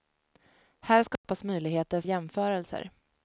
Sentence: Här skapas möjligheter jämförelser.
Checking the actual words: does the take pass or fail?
pass